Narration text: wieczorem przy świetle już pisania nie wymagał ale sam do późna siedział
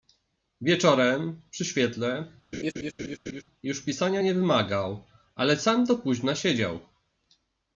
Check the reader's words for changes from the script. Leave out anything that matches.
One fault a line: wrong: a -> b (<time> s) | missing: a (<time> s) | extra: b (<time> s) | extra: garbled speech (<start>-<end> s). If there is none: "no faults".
no faults